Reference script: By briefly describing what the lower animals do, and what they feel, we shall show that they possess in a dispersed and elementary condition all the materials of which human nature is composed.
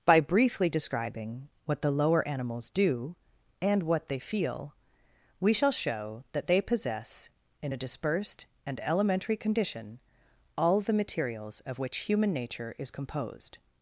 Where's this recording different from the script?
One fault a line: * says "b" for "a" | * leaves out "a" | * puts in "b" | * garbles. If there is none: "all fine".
all fine